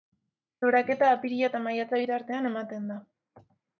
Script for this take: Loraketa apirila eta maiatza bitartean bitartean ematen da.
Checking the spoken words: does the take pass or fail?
fail